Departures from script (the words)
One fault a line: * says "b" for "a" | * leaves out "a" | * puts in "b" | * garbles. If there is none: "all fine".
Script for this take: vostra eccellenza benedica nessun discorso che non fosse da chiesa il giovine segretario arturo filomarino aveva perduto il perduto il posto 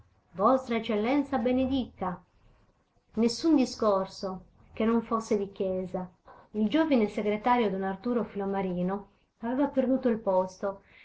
* says "di" for "da"
* puts in "don"
* leaves out "perduto il"